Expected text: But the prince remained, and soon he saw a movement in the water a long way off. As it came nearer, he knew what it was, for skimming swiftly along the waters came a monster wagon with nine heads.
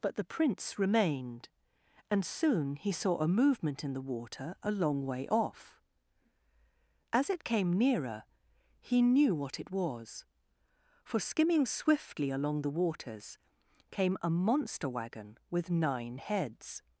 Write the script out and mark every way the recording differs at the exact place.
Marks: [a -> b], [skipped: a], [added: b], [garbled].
But the prince remained, and soon he saw a movement in the water a long way off. As it came nearer, he knew what it was, for skimming swiftly along the waters came a monster wagon with nine heads.